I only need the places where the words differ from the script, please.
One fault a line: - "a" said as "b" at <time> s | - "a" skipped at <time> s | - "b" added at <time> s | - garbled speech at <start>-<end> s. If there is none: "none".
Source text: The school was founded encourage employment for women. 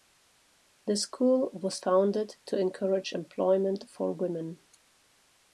- "to" added at 2.5 s